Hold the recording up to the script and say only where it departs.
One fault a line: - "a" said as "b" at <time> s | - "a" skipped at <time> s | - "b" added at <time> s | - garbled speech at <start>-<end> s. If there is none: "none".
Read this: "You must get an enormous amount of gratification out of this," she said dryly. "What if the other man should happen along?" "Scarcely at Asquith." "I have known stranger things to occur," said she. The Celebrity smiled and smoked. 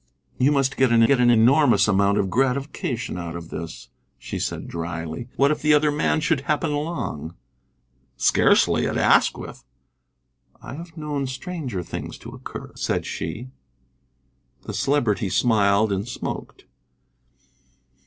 - "get an" added at 1.1 s